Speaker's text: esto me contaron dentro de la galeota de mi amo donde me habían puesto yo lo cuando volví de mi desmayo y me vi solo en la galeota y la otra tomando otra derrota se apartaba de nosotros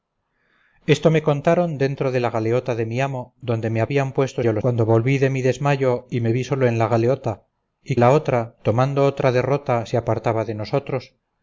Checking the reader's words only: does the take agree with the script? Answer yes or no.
yes